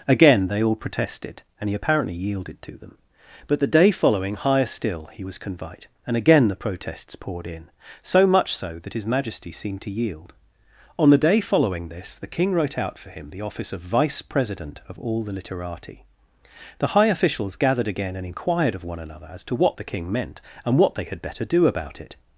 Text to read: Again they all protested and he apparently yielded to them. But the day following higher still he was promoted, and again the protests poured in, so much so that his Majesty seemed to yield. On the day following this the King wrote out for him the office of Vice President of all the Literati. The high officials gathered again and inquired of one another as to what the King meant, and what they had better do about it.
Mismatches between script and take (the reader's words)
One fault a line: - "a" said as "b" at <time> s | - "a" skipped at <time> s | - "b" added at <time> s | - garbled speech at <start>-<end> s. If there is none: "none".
- "promoted" said as "convite" at 5.4 s